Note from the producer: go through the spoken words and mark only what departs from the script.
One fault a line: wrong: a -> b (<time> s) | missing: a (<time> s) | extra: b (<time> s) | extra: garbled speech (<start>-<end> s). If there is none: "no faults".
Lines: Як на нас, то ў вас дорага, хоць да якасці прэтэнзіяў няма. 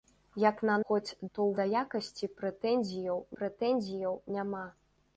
wrong: нас -> хоць (0.9 s)
missing: вас дорага хоць (1.6 s)
extra: прэтэнзіяў (3.4 s)